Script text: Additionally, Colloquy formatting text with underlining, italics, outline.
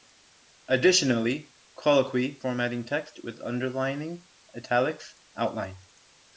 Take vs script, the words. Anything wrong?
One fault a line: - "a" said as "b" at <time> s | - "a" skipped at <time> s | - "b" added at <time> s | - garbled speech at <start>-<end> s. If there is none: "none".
none